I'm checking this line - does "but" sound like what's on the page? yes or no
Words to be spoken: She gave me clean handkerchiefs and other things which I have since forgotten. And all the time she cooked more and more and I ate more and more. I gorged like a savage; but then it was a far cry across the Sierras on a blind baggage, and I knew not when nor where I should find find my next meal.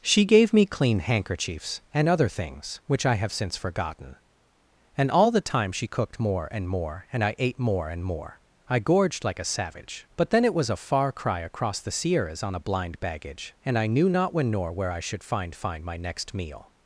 yes